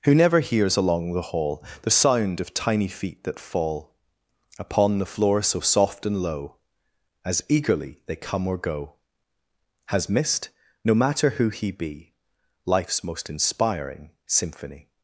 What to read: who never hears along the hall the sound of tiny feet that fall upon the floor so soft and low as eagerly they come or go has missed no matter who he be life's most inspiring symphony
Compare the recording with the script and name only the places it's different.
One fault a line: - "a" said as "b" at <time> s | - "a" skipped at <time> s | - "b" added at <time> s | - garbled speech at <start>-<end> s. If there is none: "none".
none